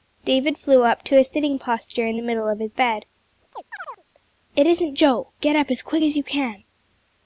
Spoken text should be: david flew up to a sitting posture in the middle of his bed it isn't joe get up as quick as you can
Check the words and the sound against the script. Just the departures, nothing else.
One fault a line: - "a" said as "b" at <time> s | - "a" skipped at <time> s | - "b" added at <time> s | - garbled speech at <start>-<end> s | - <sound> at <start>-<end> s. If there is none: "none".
- chirp at 3.5-4.0 s